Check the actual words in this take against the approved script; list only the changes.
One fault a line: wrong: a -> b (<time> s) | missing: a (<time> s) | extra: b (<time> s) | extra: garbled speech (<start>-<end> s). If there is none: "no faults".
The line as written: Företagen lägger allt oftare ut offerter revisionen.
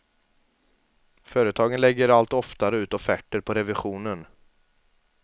extra: på (3.4 s)